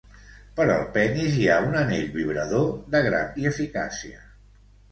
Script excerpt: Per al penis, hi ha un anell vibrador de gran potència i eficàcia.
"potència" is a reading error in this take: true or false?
true